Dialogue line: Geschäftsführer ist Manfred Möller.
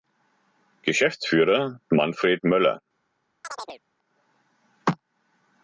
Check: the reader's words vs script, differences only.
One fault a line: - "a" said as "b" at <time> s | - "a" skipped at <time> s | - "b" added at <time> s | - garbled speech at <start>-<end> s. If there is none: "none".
- "ist" skipped at 1.8 s